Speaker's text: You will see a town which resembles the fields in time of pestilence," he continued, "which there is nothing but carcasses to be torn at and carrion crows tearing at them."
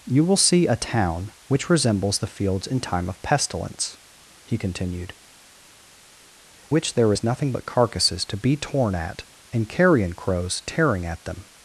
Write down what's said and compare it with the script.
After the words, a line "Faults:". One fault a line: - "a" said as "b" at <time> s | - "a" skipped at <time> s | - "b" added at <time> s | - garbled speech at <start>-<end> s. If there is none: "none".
You will see a town which resembles the fields in time of pestilence," he continued, "which there is nothing but carcasses to be torn at and carrion crows tearing at them."
Faults:
none